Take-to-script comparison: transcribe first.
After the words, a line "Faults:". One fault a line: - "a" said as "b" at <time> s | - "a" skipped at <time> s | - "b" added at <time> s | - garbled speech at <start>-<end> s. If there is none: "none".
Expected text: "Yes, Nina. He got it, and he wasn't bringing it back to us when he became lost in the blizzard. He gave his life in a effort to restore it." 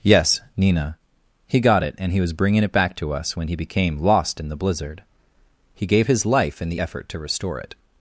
"Yes, Nina. He got it, and he was bringing it back to us when he became lost in the blizzard. He gave his life in the effort to restore it."
Faults:
- "wasn't" said as "was" at 2.2 s
- "a" said as "the" at 6.7 s